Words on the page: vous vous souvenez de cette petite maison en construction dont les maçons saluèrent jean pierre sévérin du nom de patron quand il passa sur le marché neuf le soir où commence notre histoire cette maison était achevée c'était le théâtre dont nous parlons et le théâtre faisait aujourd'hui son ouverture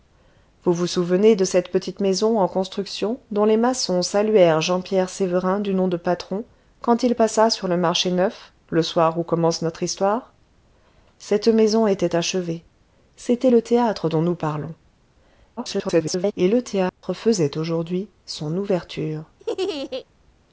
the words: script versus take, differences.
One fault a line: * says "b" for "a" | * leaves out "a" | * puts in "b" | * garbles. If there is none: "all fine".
* garbles